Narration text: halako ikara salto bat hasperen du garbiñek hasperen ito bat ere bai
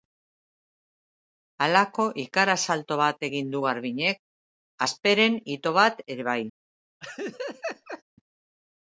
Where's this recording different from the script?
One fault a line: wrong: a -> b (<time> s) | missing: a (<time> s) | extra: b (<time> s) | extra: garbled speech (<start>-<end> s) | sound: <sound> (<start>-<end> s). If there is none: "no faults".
wrong: hasperen -> egin (3.3 s)
sound: laugh (7.0-8.0 s)